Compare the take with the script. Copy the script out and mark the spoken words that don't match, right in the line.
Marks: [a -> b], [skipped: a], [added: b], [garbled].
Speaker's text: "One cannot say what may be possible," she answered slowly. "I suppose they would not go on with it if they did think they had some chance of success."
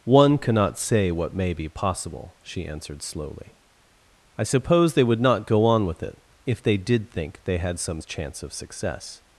"One cannot say what may be possible," she answered slowly. "I suppose they would not go on with it if they did think they had some chance of success."